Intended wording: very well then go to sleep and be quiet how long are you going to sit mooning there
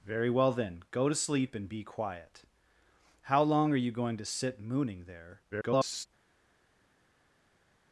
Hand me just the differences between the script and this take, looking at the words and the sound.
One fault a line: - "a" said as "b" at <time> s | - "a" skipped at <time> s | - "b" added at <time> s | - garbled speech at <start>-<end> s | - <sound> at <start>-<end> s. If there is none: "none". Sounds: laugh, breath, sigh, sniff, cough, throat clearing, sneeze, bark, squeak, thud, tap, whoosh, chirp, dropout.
- garbled speech at 5.5-6.1 s